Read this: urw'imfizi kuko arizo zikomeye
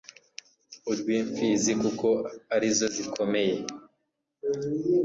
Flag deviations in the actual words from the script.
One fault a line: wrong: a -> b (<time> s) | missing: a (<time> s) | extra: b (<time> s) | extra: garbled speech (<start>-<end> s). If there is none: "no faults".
no faults